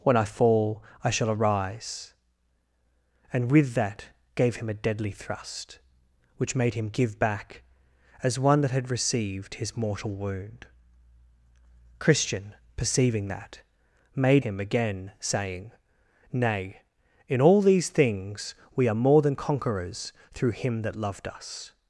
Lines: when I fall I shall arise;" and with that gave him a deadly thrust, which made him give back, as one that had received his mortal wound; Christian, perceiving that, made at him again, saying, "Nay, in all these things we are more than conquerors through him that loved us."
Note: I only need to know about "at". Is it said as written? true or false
false